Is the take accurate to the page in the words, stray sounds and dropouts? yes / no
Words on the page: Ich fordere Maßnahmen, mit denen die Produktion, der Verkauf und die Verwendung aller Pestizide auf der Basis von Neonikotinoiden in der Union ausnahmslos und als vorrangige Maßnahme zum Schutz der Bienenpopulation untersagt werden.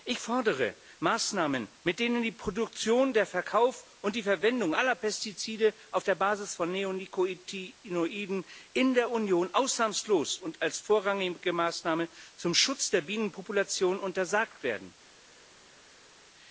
yes